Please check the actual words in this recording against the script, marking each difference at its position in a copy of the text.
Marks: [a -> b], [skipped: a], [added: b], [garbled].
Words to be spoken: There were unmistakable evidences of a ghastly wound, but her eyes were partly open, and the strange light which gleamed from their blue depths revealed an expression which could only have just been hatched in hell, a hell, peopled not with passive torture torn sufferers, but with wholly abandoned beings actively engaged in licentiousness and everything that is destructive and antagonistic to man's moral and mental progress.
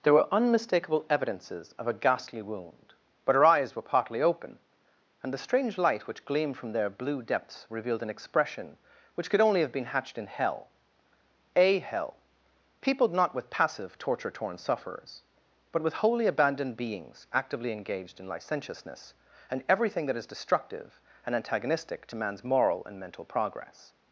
There were unmistakable evidences of a ghastly wound, but her eyes were partly open, and the strange light which gleamed from their blue depths revealed an expression which could only have [skipped: just] been hatched in hell, a hell, peopled not with passive torture torn sufferers, but with wholly abandoned beings actively engaged in licentiousness and everything that is destructive and antagonistic to man's moral and mental progress.